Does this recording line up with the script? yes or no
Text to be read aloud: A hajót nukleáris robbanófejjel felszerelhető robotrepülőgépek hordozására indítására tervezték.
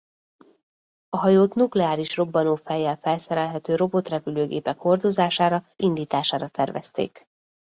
yes